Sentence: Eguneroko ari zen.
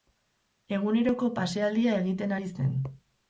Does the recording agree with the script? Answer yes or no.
no